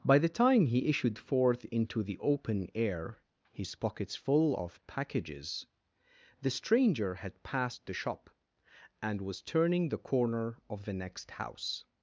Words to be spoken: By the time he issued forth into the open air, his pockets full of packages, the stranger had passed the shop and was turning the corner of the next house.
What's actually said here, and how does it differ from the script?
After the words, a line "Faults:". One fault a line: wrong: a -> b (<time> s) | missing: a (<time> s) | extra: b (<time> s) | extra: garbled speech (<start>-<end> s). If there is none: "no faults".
By the time he issued forth into the open air, his pockets full of packages, the stranger had passed the shop and was turning the corner of the next house.
Faults:
no faults